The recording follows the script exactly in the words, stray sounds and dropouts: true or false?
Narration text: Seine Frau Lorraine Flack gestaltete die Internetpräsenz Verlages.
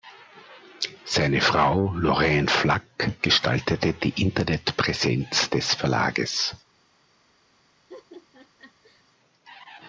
false